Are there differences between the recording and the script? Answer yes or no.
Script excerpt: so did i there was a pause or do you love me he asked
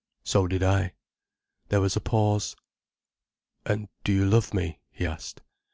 yes